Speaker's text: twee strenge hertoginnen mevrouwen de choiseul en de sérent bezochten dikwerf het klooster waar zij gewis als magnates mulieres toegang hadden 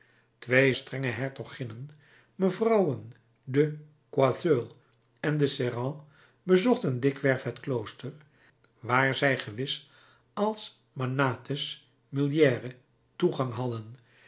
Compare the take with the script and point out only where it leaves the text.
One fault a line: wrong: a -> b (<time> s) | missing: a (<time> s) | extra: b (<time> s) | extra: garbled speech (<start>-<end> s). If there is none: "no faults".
no faults